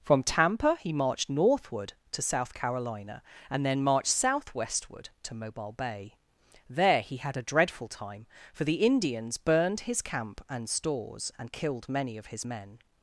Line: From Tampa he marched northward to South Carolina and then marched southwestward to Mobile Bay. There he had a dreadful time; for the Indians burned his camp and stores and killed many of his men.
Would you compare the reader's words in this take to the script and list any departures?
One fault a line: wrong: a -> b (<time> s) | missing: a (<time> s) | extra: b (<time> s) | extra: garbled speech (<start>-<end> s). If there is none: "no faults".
no faults